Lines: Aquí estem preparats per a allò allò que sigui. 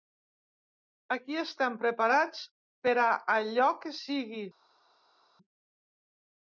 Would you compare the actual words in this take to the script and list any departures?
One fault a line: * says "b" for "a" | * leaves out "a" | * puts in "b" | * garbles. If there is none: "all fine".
* leaves out "allò"